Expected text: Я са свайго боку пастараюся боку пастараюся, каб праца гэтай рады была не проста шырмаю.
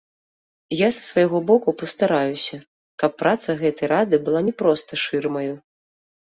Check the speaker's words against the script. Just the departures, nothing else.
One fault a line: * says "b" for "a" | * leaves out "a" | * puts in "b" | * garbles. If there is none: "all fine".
* leaves out "боку пастараюся"